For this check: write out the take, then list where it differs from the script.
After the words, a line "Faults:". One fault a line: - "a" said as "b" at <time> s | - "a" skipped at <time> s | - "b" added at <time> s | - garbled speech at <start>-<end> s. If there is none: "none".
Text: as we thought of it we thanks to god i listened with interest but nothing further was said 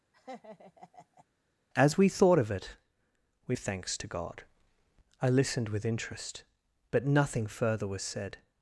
as we thought of it we thanks to god i listened with interest but nothing further was said
Faults:
none